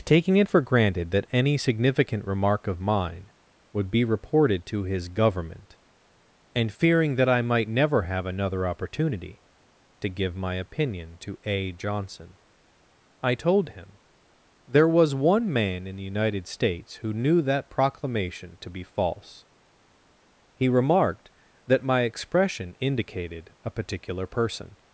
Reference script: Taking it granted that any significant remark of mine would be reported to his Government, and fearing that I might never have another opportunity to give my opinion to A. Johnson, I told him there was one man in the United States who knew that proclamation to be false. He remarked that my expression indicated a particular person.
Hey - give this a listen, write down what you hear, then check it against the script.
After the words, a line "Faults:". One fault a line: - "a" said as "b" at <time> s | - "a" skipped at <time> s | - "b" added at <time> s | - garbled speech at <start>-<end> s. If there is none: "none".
Taking it for granted that any significant remark of mine would be reported to his Government, and fearing that I might never have another opportunity to give my opinion to A. Johnson, I told him there was one man in the United States who knew that proclamation to be false. He remarked that my expression indicated a particular person.
Faults:
- "for" added at 0.5 s